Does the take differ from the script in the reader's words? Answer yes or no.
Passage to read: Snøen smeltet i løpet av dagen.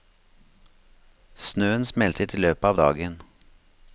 no